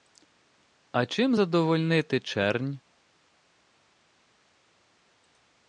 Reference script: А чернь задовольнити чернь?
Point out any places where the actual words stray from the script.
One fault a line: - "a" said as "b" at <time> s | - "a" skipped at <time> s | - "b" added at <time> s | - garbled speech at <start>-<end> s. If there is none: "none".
- "чернь" said as "чим" at 1.1 s